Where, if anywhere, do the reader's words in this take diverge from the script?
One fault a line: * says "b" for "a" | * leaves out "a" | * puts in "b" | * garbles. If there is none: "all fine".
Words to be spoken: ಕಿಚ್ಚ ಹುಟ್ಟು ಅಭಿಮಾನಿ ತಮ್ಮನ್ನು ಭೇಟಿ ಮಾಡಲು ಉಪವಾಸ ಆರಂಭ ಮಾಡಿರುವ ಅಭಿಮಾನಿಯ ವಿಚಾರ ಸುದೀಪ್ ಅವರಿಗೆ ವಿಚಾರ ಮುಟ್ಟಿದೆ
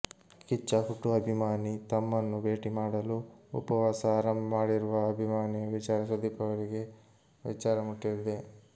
all fine